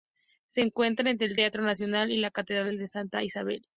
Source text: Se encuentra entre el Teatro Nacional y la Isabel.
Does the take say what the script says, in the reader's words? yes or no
no